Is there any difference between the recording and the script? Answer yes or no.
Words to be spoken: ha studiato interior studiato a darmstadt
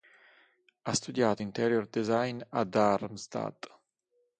yes